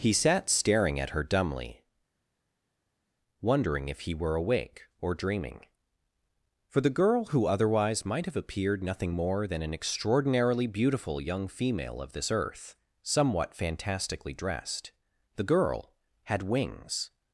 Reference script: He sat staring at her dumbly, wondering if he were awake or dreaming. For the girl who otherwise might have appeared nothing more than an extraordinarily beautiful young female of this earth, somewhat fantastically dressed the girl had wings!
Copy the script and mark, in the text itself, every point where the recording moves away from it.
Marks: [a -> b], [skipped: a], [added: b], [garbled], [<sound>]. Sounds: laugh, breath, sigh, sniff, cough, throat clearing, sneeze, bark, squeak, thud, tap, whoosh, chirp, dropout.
He sat staring at her dumbly, wondering if he were awake or dreaming. For the girl who otherwise might have appeared nothing more than an extraordinarily beautiful young female of this earth, somewhat fantastically dressed the girl had wings!